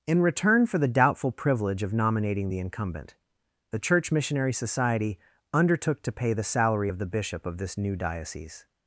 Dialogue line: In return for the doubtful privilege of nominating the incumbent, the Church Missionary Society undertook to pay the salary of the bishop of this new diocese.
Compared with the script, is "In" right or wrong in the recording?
right